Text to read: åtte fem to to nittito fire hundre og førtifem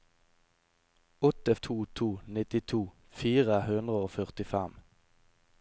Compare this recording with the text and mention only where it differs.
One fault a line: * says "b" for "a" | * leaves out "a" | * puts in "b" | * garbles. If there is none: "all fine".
* leaves out "fem"